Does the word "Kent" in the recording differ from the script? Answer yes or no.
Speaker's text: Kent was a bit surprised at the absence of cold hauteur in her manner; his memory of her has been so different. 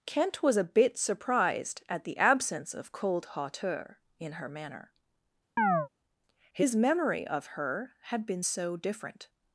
no